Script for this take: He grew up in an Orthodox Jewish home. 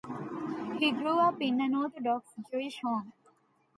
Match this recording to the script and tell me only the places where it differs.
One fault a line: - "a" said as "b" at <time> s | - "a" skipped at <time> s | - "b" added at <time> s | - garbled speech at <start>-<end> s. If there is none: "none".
none